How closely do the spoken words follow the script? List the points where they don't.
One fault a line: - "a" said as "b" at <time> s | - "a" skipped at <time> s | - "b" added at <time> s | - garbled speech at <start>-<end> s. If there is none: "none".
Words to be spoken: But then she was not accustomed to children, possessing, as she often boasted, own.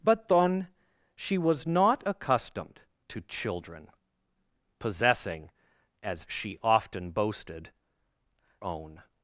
none